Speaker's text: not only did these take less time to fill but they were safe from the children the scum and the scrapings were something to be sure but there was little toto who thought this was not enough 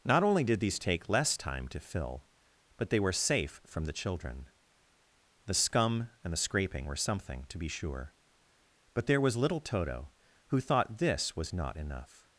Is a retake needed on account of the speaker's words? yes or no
yes